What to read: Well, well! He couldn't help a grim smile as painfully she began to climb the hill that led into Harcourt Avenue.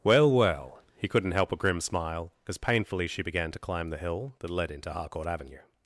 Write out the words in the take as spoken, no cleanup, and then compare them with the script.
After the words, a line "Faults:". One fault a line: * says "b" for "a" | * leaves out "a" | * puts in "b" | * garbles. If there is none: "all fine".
Well, well! He couldn't help a grim smile as painfully she began to climb the hill that led into Harcourt Avenue.
Faults:
all fine